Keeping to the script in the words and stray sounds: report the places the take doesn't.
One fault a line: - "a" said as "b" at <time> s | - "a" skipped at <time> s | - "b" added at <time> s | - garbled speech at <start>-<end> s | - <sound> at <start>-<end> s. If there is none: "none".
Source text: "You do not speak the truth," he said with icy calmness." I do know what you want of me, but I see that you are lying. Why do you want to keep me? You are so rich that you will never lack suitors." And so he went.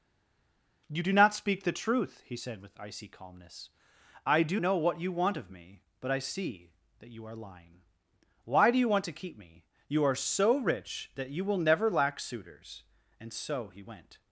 none